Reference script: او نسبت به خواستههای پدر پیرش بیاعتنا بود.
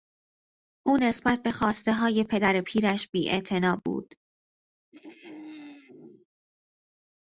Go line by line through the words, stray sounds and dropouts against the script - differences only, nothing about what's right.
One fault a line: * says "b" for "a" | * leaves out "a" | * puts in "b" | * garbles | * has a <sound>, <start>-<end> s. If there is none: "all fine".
* has a throat clearing, 4.9-6.3 s